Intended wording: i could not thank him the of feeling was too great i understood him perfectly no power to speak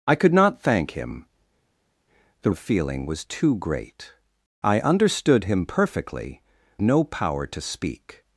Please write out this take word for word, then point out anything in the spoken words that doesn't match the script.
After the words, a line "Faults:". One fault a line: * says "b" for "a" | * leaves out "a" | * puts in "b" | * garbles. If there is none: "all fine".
i could not thank him the of feeling was too great i understood him perfectly no power to speak
Faults:
all fine